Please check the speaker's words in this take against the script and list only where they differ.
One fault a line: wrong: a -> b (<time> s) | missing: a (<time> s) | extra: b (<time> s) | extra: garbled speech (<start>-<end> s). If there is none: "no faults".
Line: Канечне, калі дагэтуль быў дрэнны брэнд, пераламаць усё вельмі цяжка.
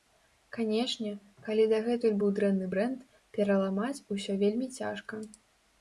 no faults